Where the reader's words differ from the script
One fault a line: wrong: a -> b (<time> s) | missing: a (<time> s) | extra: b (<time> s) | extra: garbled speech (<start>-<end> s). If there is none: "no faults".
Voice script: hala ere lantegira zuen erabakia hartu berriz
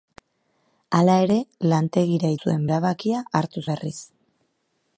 no faults